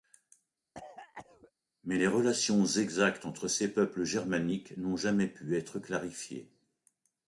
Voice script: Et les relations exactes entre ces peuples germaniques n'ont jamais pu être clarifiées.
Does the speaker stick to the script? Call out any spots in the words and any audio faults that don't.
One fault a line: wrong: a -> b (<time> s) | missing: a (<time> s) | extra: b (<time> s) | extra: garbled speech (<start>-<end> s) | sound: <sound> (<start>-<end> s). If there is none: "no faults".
sound: cough (0.7-1.5 s)
wrong: Et -> Mais (1.8 s)